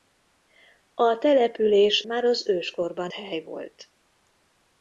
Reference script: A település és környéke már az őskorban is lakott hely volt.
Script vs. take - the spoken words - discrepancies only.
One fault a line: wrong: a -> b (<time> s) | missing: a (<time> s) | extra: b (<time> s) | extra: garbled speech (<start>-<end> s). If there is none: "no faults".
missing: és környéke (2.0 s)
missing: is lakott (3.1 s)